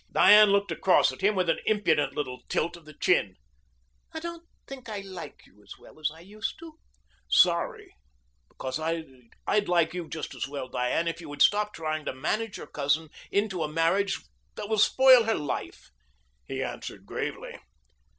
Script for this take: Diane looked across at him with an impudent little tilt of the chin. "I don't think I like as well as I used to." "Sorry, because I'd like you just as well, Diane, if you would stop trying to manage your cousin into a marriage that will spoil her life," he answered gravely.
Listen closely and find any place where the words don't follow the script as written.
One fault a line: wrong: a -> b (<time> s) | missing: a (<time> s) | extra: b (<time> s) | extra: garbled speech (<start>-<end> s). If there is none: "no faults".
extra: you (5.5 s)